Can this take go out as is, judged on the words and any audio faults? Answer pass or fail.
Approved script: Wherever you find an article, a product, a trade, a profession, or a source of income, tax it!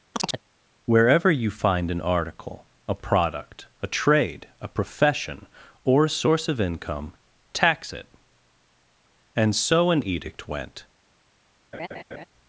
fail